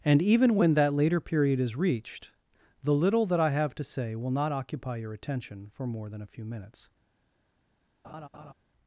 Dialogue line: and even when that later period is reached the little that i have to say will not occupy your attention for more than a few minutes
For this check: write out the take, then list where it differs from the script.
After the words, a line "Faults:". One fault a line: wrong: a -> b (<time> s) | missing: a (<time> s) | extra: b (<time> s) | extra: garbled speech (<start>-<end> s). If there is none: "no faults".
and even when that later period is reached the little that i have to say will not occupy your attention for more than a few minutes
Faults:
no faults